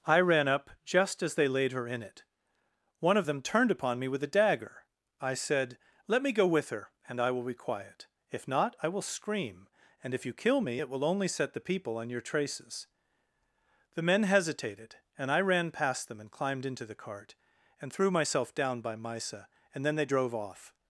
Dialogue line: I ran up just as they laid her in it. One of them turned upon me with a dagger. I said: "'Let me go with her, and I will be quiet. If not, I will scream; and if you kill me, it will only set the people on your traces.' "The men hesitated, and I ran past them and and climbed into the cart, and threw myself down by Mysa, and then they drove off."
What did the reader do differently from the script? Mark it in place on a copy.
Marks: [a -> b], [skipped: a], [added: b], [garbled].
I ran up just as they laid her in it. One of them turned upon me with a dagger. I said: "'Let me go with her, and I will be quiet. If not, I will scream; and if you kill me, it will only set the people on your traces.' "The men hesitated, and I ran past them and [skipped: and] climbed into the cart, and threw myself down by Mysa, and then they drove off."